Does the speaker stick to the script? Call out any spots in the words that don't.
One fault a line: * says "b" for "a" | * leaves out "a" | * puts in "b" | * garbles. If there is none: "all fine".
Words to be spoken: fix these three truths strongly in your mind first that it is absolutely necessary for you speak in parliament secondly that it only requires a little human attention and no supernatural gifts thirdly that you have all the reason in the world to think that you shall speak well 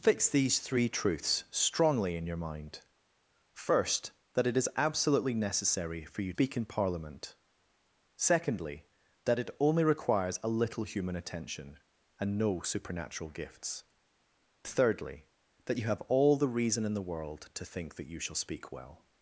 all fine